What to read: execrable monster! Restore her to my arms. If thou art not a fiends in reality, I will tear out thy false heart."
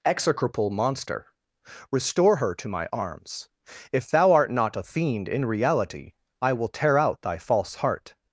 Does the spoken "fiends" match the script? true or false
false